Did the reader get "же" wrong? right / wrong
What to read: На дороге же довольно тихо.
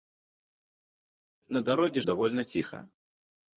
wrong